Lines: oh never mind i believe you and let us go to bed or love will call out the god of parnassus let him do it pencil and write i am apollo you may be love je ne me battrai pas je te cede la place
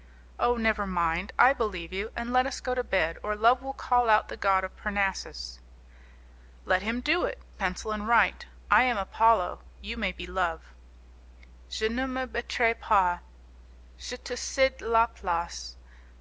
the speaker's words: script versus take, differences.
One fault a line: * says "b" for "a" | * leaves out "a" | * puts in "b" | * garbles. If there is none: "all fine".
all fine